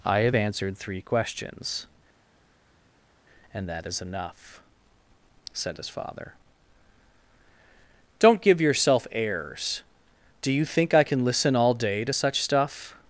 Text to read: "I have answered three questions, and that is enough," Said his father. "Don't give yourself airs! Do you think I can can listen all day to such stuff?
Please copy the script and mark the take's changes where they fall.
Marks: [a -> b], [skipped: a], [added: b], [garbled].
"I have answered three questions, and that is enough," Said his father. "Don't give yourself airs! Do you think I can [skipped: can] listen all day to such stuff?